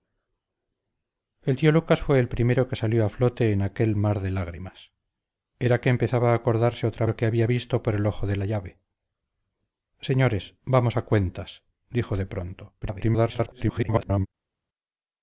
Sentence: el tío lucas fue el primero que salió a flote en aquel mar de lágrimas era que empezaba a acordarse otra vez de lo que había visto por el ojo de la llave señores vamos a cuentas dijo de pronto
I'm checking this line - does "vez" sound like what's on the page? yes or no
no